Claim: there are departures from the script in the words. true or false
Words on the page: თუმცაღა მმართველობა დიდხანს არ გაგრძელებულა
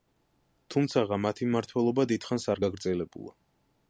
true